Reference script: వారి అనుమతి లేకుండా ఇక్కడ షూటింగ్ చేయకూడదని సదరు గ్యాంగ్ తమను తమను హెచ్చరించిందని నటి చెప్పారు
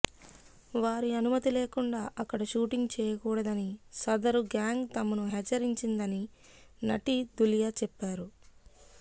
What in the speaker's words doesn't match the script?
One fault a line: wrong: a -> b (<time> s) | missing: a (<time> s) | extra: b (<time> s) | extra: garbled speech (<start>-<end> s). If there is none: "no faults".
wrong: ఇక్కడ -> అక్కడ (2.2 s)
missing: తమను (5.3 s)
extra: ధులియా (7.4 s)